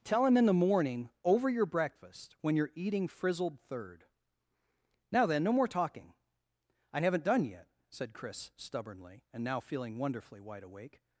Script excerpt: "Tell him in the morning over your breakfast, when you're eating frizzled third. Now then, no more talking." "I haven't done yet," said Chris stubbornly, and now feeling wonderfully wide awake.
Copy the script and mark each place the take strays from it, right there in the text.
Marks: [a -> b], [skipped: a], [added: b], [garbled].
"Tell him in the morning over your breakfast, when you're eating frizzled third. Now then, no more talking." "I haven't done yet," said Chris stubbornly, and now feeling wonderfully wide awake.